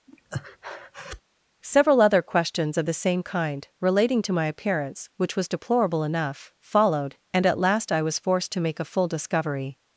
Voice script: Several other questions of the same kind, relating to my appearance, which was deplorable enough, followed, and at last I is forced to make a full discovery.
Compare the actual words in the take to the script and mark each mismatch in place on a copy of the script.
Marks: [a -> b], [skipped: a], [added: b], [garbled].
Several other questions of the same kind, relating to my appearance, which was deplorable enough, followed, and at last I [is -> was] forced to make a full discovery.